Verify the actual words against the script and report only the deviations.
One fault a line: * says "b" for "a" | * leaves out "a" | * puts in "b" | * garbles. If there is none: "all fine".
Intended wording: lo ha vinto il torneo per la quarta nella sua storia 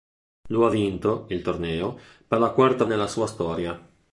all fine